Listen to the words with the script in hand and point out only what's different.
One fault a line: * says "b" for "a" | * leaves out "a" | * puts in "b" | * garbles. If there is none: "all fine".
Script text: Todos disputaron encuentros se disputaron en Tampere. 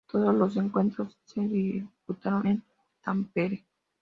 * says "los" for "disputaron"